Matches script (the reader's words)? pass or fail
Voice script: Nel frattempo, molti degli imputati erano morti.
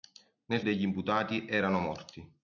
fail